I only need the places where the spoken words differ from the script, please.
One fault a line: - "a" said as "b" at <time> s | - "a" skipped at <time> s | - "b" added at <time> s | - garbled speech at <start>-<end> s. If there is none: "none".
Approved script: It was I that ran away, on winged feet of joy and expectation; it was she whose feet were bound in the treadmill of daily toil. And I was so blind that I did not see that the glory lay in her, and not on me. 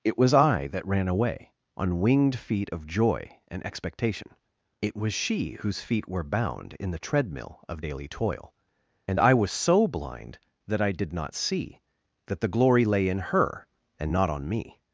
none